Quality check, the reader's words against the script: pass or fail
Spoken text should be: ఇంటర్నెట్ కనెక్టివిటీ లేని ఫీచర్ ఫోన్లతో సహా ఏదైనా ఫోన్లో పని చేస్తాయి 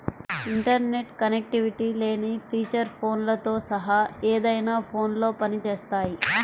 pass